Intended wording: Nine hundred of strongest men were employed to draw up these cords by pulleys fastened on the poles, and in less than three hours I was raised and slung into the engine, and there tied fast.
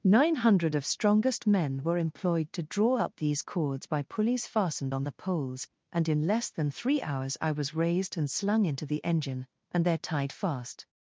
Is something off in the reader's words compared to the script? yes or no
no